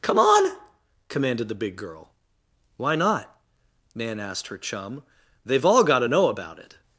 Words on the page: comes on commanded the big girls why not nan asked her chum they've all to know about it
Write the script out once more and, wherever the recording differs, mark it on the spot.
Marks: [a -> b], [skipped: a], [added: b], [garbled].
[comes -> come] on commanded the big [girls -> girl] why not nan asked her chum they've all [added: got] to know about it